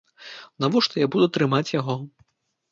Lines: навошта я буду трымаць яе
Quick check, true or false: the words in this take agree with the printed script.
false